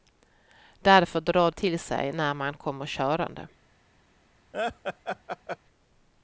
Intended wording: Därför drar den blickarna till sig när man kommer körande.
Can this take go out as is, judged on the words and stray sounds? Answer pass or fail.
fail